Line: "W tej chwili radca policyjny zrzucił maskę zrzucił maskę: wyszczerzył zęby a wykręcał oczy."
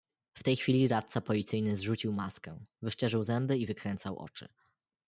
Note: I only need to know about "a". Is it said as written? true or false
false